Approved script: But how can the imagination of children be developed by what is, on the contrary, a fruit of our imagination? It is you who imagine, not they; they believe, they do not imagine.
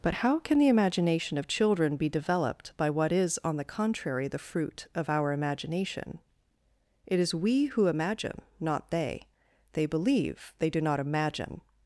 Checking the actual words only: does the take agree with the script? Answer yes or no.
no